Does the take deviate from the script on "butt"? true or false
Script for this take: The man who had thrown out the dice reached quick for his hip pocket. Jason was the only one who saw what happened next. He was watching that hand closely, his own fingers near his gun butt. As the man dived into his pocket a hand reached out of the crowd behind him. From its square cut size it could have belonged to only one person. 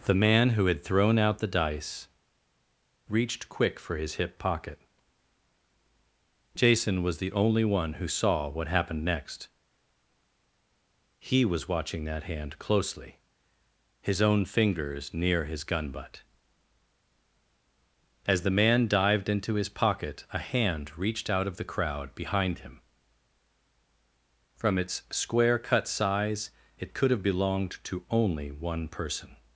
false